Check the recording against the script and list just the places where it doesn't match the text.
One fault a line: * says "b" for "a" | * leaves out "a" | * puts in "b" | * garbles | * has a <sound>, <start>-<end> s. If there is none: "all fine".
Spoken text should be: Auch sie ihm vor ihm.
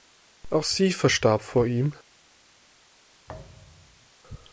* says "verstarb" for "ihm"
* has a thud, 3.3-4.1 s